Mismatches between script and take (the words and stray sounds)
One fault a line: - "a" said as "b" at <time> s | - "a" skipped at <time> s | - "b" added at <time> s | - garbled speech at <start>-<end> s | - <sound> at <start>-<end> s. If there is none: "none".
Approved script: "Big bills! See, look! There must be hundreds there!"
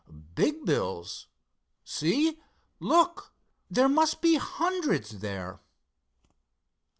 none